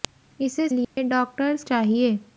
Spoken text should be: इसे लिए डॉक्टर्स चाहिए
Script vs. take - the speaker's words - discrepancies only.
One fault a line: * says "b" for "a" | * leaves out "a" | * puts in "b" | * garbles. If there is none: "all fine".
all fine